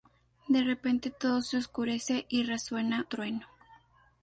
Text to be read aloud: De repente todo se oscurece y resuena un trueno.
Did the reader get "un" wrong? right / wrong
wrong